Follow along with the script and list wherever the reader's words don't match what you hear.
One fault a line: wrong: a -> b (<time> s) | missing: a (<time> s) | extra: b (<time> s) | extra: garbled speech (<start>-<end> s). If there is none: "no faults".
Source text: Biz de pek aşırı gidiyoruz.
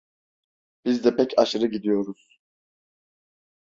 no faults